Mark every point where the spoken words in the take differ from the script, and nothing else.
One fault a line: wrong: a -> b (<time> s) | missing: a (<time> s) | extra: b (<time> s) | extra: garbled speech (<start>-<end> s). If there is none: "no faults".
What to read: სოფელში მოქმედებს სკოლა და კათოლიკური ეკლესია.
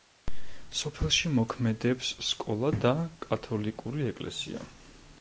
no faults